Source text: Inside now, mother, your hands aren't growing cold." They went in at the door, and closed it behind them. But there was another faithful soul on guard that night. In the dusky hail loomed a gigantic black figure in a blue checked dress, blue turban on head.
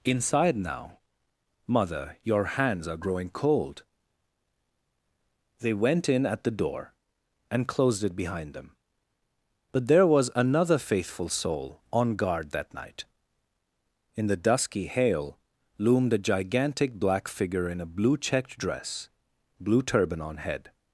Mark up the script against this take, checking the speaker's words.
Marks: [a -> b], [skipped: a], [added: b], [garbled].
Inside now, mother, your hands [aren't -> are] growing cold." They went in at the door, and closed it behind them. But there was another faithful soul on guard that night. In the dusky hail loomed a gigantic black figure in a blue checked dress, blue turban on head.